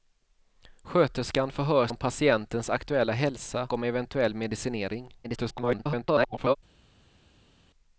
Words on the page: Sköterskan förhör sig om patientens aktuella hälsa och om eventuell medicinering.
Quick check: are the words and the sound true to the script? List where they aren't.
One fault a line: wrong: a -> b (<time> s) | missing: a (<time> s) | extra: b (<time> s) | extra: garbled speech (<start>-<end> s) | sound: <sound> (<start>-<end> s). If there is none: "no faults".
missing: sig (1.9 s)
missing: och (3.7 s)
extra: garbled speech (5.2-6.6 s)